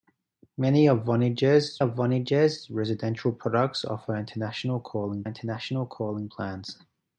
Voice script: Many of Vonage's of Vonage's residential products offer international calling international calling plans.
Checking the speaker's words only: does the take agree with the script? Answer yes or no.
yes